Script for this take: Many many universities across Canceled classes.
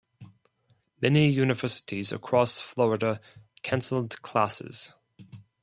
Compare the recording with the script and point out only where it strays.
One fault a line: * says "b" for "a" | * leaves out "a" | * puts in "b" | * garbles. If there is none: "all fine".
* leaves out "many"
* puts in "Florida"